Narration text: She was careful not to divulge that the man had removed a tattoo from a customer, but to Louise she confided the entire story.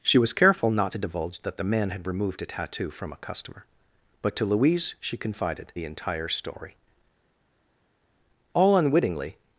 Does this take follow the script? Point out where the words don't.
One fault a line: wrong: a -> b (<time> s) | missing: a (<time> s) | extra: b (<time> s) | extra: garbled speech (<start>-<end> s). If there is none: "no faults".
extra: All unwittingly (8.5 s)